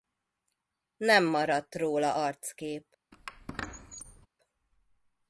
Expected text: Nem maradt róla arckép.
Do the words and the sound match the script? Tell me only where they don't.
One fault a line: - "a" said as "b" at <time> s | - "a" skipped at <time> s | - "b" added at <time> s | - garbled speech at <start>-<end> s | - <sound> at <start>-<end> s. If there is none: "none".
- squeak at 3.1-4.3 s